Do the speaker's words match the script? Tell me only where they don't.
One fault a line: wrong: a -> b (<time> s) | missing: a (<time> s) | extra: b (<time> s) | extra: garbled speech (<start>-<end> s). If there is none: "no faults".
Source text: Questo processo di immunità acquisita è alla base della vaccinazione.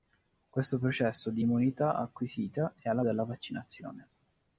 missing: base (3.0 s)